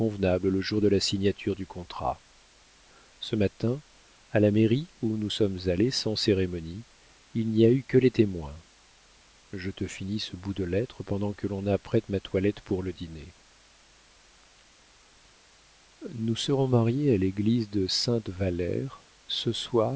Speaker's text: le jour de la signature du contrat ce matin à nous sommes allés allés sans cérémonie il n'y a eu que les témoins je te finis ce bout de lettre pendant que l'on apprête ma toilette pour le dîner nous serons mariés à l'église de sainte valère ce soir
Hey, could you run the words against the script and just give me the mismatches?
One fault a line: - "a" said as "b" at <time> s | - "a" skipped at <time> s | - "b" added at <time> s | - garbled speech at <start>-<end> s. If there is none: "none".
- "la mairie où" added at 4.4 s
- "allés" skipped at 5.9 s